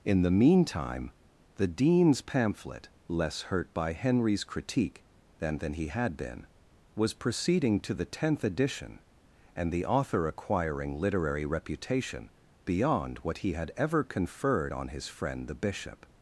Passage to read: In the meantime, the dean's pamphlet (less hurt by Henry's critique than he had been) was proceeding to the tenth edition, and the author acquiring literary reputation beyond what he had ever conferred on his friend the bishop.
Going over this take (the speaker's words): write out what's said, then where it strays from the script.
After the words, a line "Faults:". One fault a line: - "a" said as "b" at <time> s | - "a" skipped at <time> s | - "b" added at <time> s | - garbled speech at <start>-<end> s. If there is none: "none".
In the meantime, the dean's pamphlet (less hurt by Henry's critique than than he had been) was proceeding to the tenth edition, and the author acquiring literary reputation beyond what he had ever conferred on his friend the bishop.
Faults:
- "than" added at 5.6 s